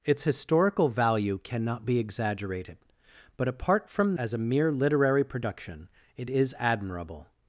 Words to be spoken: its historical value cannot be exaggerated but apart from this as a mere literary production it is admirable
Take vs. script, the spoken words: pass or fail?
fail